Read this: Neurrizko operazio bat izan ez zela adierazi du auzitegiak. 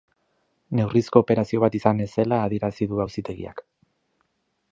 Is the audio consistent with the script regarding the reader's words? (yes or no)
yes